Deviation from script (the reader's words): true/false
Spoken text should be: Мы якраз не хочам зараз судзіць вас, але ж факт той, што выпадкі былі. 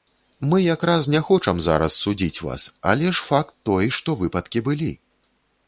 false